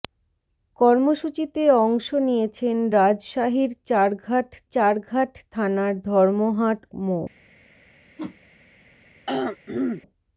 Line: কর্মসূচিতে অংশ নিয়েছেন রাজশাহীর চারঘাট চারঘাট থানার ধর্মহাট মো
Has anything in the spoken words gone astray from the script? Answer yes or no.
no